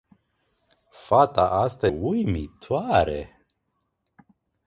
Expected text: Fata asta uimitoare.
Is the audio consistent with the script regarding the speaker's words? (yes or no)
yes